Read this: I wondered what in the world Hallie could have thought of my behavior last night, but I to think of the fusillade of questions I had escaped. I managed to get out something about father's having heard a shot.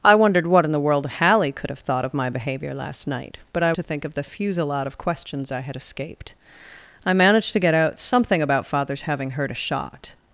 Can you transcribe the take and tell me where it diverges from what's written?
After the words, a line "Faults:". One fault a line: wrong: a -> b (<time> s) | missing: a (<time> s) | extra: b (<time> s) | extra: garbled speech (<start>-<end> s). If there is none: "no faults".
I wondered what in the world Hallie could have thought of my behavior last night, but I to think of the fusillade of questions I had escaped. I managed to get out something about father's having heard a shot.
Faults:
no faults